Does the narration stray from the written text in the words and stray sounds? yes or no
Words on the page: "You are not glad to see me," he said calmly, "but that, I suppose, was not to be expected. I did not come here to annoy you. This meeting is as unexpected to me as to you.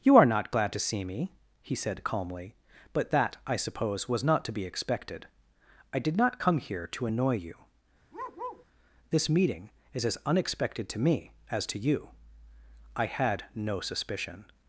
yes